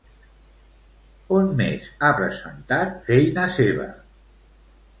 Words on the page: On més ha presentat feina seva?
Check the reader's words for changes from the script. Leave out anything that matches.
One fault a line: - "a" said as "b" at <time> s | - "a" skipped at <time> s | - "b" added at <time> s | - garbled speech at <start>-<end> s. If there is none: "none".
none